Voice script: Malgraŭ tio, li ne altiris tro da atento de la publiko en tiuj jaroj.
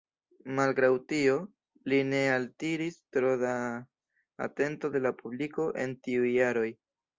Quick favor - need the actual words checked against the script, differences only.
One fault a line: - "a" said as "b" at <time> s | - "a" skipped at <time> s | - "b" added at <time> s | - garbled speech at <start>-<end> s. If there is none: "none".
none